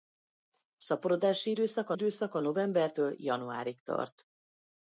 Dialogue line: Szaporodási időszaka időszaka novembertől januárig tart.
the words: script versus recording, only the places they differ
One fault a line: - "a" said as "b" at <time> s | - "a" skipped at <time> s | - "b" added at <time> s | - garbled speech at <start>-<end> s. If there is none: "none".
none